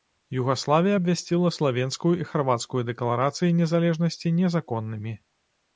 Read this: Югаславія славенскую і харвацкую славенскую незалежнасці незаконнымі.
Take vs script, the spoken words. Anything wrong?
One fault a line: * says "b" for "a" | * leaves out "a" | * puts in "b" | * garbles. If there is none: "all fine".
* puts in "абвясціла"
* says "дэкларацыі" for "славенскую"